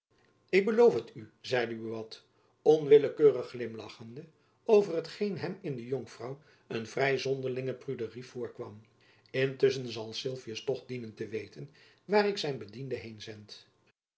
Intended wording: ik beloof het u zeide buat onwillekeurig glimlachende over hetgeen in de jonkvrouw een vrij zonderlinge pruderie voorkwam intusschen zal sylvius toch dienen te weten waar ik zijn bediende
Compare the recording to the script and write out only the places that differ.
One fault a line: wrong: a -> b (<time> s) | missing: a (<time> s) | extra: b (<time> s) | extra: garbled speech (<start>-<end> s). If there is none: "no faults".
extra: hem (5.4 s)